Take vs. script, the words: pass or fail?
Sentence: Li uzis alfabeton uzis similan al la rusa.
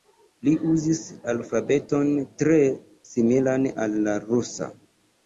fail